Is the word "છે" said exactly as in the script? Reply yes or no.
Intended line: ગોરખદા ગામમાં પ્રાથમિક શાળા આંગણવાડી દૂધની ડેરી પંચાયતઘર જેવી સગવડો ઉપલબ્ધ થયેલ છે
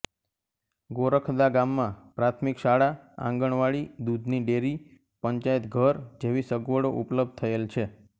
yes